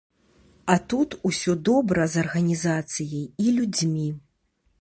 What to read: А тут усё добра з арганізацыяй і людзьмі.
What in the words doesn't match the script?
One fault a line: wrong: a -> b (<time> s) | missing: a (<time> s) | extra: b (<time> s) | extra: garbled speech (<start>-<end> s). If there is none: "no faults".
no faults